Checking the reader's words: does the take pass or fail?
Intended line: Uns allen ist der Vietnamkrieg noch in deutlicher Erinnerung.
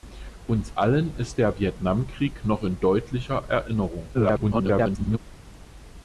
fail